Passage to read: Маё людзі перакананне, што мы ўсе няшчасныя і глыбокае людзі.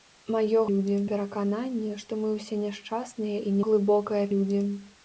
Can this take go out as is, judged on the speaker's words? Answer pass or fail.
pass